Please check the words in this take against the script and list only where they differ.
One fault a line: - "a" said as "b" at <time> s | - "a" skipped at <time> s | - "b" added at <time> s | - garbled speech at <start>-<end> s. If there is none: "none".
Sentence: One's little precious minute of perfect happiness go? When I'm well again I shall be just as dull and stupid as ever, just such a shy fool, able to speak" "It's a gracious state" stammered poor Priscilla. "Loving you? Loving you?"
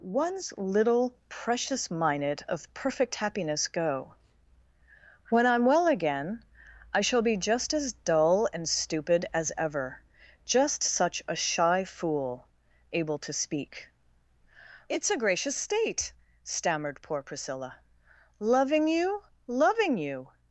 none